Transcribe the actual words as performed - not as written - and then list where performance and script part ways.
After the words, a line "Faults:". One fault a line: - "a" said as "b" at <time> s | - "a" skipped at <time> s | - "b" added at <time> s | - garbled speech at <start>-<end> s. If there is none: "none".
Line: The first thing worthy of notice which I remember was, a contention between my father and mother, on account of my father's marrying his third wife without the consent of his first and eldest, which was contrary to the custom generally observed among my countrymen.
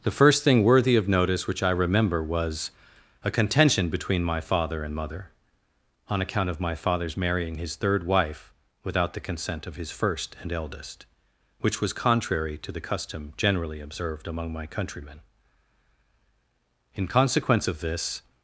The first thing worthy of notice which I remember was, a contention between my father and mother, on account of my father's marrying his third wife without the consent of his first and eldest, which was contrary to the custom generally observed among my countrymen. In consequence of this
Faults:
- "In consequence of this" added at 17.0 s